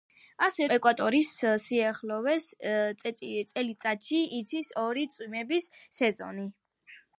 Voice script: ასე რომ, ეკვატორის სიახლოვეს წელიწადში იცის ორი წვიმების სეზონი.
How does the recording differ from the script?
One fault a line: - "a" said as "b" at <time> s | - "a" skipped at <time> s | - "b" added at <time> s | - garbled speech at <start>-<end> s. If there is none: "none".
- "რომ" skipped at 0.7 s